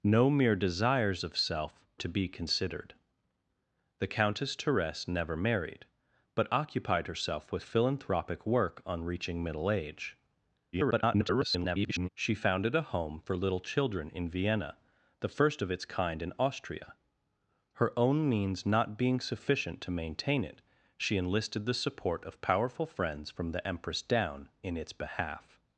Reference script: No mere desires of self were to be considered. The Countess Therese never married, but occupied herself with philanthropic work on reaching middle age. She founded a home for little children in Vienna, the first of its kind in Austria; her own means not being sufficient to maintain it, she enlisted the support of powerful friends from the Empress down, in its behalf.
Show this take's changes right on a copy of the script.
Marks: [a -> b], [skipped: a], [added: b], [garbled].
No mere desires of self [skipped: were] to be considered. The Countess Therese never married, but occupied herself with philanthropic work on reaching middle age. [garbled] She founded a home for little children in Vienna, the first of its kind in Austria; her own means not being sufficient to maintain it, she enlisted the support of powerful friends from the Empress down, in its behalf.